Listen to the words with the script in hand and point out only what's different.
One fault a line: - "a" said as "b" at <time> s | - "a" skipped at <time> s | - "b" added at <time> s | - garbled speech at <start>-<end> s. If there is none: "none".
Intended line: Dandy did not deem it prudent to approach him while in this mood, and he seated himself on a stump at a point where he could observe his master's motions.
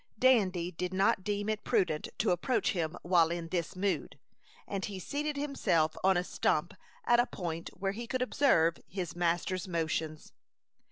none